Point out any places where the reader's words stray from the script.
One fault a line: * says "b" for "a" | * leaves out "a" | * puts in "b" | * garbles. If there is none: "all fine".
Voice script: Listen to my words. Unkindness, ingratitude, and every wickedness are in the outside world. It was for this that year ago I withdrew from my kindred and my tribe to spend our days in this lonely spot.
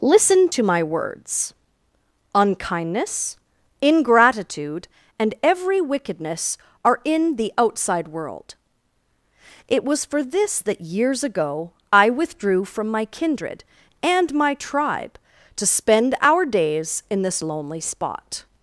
* says "years" for "year"